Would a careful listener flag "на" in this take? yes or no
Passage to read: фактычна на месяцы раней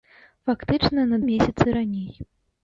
no